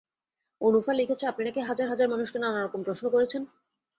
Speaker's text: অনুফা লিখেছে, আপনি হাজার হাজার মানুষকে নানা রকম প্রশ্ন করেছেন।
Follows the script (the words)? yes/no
no